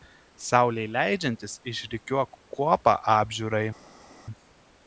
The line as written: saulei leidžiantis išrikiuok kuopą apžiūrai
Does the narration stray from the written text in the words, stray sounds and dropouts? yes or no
no